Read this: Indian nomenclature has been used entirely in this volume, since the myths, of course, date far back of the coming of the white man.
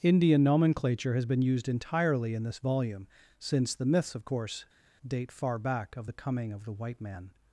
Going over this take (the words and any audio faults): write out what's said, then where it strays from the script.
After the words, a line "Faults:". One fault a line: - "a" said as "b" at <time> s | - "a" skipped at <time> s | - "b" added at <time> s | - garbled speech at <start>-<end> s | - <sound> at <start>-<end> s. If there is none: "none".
Indian nomenclature has been used entirely in this volume, since the myths, of course, date far back of the coming of the white man.
Faults:
none